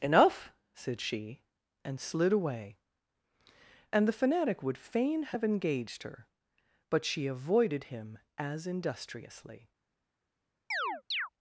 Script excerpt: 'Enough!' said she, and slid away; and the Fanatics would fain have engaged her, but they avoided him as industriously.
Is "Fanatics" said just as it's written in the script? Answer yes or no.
no